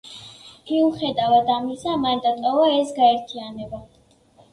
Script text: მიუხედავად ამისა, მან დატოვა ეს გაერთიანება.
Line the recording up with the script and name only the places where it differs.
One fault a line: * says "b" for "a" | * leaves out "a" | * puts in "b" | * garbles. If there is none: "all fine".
all fine